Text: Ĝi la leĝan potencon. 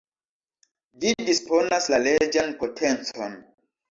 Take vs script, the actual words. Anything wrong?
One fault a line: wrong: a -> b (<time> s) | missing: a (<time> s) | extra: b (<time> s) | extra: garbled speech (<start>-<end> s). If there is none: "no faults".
extra: disponas (1.3 s)